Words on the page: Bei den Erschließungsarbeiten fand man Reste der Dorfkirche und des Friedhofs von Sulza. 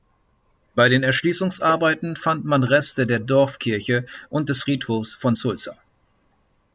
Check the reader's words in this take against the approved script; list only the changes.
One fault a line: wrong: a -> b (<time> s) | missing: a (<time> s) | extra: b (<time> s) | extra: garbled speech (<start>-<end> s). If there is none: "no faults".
no faults